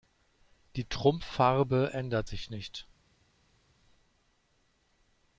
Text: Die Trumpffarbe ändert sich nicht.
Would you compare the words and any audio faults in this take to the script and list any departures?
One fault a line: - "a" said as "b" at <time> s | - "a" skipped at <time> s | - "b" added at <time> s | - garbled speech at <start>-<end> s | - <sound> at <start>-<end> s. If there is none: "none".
none